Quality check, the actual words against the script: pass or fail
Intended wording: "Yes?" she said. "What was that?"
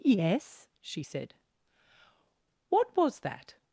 pass